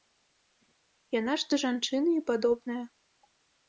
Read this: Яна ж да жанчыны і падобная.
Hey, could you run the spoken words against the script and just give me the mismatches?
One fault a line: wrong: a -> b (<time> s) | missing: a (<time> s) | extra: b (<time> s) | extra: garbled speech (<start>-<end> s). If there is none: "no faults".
no faults